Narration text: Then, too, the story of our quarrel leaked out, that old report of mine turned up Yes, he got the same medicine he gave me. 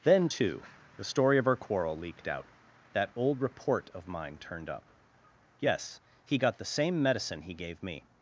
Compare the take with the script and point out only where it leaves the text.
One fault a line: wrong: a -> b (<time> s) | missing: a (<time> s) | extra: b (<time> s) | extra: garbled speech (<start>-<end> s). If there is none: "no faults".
no faults